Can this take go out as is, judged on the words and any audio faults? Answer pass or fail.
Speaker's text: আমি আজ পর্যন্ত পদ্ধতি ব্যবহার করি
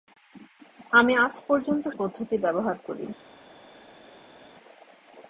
pass